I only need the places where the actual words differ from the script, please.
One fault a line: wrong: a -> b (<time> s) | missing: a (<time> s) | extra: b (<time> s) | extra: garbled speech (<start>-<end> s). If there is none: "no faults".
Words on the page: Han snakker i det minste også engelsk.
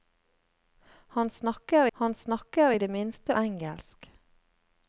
extra: han snakker (1.9 s)
missing: også (3.4 s)